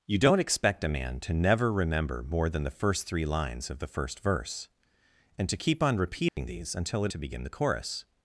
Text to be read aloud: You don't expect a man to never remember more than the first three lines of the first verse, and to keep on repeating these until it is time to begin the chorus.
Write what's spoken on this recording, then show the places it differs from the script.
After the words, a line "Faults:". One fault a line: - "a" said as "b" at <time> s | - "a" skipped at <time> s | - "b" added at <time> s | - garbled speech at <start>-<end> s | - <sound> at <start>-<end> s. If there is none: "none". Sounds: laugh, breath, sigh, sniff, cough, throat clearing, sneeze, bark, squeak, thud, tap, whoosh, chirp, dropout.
You don't expect a man to never remember more than the first three lines of the first verse, and to keep on repeating these until it to begin the chorus.
Faults:
- dropout at 6.3-6.4 s
- "is time" skipped at 7.1 s